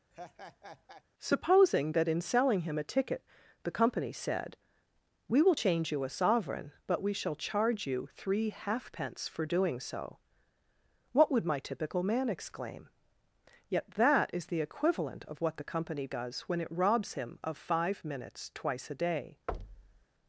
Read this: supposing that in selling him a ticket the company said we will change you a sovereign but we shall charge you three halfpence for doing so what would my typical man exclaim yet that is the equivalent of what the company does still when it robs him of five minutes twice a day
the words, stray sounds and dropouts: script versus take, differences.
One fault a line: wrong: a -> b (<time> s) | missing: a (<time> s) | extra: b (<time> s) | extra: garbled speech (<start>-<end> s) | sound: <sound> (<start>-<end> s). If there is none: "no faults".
sound: laugh (0.1-1.0 s)
missing: still (16.5 s)
sound: thud (19.5-20.1 s)